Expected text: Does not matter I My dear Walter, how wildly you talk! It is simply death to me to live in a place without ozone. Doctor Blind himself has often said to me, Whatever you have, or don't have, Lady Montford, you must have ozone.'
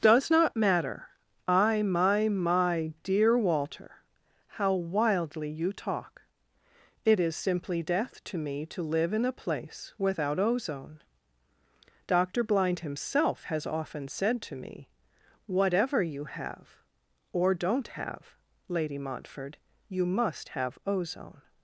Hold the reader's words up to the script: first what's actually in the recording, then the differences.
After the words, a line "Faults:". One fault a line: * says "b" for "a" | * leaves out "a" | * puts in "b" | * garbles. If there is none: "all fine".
Does not matter I My My dear Walter, how wildly you talk! It is simply death to me to live in a place without ozone. Doctor Blind himself has often said to me, Whatever you have, or don't have, Lady Montford, you must have ozone.'
Faults:
* puts in "My"